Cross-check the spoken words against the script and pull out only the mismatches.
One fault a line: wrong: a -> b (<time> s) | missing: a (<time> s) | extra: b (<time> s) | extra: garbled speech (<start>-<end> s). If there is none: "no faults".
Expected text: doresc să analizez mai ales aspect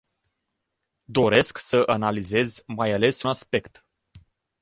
no faults